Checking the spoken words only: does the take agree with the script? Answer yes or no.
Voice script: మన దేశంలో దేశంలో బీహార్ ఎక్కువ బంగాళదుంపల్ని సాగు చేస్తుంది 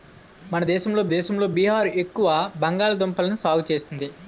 yes